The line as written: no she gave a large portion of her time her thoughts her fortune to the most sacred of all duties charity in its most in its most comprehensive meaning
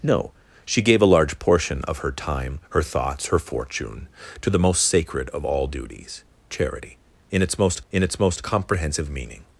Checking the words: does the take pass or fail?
pass